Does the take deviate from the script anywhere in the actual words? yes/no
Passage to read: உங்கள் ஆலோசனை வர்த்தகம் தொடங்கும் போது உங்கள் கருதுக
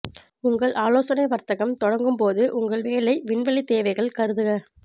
yes